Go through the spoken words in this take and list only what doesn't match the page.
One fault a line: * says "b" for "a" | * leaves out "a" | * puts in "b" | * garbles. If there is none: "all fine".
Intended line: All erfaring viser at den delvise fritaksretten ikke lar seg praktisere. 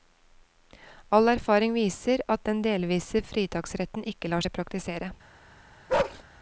all fine